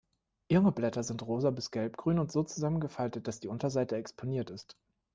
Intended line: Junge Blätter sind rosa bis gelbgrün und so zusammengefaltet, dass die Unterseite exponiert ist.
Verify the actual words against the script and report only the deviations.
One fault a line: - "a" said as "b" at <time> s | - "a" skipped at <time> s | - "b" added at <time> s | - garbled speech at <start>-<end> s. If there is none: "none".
none